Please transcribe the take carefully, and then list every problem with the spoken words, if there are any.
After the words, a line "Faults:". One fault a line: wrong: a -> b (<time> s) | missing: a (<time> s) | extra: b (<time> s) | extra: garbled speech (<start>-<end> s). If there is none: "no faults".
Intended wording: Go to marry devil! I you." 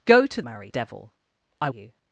Go to marry devil! I you."
Faults:
no faults